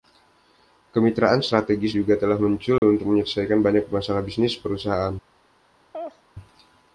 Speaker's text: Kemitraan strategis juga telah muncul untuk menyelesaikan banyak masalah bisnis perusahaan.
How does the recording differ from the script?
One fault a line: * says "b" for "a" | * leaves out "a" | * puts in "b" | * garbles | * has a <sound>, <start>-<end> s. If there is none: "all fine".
* has a dropout, 2.8-2.8 s
* has a laugh, 5.9-6.2 s